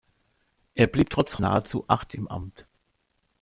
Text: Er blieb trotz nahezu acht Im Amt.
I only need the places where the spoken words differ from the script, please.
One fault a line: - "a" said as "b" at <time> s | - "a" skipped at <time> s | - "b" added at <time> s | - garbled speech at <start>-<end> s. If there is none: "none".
none